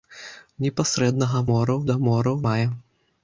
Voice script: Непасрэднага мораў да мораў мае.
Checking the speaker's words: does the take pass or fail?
pass